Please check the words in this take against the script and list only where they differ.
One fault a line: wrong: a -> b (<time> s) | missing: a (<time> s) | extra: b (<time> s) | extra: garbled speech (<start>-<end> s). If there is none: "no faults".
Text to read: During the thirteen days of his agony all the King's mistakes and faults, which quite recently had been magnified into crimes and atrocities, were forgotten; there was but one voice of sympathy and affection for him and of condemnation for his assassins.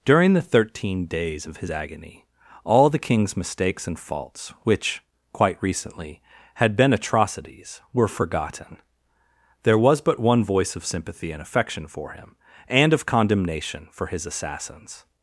missing: magnified into crimes and (6.9 s)